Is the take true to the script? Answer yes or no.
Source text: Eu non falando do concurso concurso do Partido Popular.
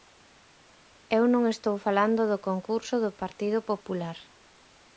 no